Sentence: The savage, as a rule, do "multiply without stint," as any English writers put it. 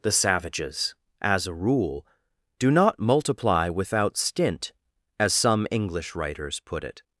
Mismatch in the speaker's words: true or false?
true